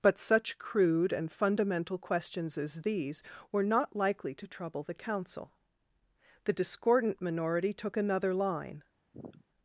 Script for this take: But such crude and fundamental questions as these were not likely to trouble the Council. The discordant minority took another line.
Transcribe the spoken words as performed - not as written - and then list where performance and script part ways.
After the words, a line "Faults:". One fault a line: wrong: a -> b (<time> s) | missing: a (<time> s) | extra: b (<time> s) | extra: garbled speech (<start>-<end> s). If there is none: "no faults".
But such crude and fundamental questions as these were not likely to trouble the Council. The discordant minority took another line.
Faults:
no faults